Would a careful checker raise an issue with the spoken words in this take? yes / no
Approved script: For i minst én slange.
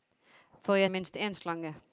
no